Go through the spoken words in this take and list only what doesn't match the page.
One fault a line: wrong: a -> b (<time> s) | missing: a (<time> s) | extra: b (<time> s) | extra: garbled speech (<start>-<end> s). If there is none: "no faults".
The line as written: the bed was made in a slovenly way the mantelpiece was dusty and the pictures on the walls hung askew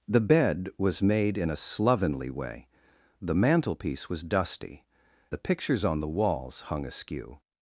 missing: and (4.8 s)